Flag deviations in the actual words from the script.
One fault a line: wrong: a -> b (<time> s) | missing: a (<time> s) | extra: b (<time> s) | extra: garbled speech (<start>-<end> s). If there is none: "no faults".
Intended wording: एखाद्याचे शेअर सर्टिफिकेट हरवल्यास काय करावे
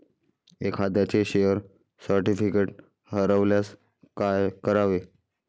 no faults